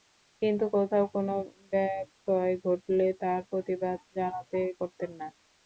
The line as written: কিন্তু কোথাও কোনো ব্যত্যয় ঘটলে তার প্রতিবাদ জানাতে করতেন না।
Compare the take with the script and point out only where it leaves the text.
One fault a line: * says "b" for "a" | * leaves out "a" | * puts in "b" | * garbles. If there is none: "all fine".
all fine